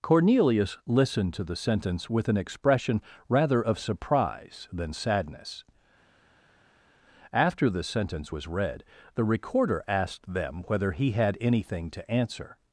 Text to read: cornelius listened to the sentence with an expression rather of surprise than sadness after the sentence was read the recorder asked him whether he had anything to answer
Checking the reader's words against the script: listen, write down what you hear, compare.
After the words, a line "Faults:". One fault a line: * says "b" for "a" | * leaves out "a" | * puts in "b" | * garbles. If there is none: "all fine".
cornelius listened to the sentence with an expression rather of surprise than sadness after the sentence was read the recorder asked them whether he had anything to answer
Faults:
* says "them" for "him"